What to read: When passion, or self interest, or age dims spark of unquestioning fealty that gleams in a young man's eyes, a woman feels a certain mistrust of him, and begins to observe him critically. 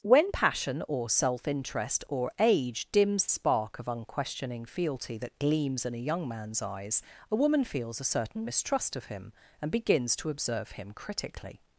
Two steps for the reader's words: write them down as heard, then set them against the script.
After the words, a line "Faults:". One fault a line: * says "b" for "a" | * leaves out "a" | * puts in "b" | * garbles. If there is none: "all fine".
When passion, or self interest, or age dims spark of unquestioning fealty that gleams in a young man's eyes, a woman feels a certain mistrust of him, and begins to observe him critically.
Faults:
all fine